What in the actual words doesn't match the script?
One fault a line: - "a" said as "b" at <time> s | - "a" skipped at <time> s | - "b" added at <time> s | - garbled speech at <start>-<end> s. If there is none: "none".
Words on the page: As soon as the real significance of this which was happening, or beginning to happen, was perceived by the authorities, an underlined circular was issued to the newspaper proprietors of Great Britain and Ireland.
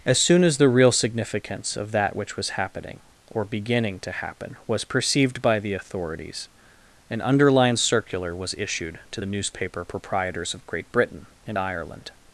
- "this" said as "that" at 1.9 s